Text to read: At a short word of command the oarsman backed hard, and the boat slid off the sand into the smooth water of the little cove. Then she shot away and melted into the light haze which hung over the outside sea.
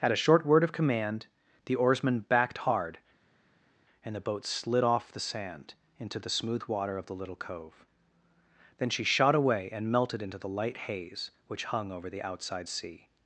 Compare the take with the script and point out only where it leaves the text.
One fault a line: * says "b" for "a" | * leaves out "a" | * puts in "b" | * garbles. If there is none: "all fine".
all fine